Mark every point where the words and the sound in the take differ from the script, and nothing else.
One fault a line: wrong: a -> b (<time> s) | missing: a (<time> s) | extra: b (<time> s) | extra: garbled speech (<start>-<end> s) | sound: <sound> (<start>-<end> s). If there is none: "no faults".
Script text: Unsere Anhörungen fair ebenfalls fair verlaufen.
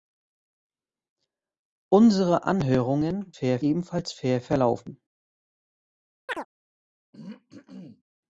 sound: chirp (6.3-6.5 s)
sound: throat clearing (7.1-8.0 s)